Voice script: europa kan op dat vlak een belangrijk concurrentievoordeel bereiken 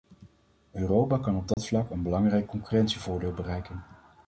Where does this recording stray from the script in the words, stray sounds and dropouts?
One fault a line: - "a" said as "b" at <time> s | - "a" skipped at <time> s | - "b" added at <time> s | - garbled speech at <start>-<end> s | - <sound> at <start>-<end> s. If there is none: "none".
- dropout at 1.5-1.6 s